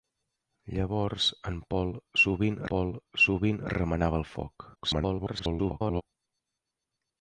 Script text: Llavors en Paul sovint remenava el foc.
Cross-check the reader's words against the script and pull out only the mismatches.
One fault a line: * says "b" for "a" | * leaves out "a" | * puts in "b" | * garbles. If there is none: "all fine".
* puts in "Paul sovint"
* garbles